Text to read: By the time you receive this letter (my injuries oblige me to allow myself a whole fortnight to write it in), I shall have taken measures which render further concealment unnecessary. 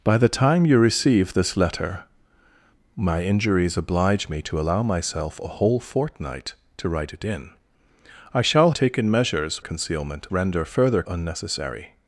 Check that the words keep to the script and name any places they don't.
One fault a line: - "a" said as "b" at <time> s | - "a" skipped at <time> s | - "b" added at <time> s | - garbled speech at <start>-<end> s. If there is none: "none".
- "have" skipped at 8.7 s
- "which" said as "concealment" at 9.6 s
- "concealment" skipped at 11.0 s